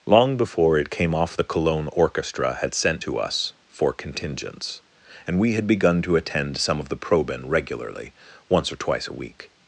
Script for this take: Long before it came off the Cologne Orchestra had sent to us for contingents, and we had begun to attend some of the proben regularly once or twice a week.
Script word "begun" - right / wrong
right